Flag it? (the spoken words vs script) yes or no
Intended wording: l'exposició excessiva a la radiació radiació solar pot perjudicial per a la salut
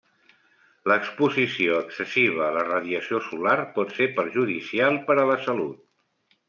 yes